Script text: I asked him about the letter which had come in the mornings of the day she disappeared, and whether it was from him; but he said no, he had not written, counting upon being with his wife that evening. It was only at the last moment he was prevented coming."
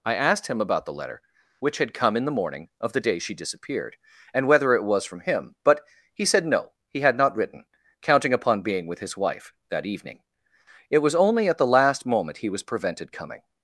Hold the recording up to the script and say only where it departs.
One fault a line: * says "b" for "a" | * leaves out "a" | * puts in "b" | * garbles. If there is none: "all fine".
* says "morning" for "mornings"